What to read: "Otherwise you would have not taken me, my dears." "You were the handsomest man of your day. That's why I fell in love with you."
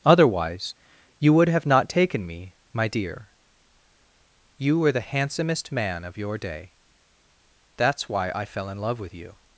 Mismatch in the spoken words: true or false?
true